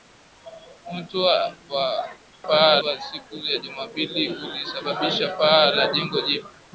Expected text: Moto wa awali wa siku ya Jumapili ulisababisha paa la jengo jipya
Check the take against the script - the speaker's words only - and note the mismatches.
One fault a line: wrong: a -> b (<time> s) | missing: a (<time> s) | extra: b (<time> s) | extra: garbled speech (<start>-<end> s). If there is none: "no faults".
wrong: awali -> paa (2.5 s)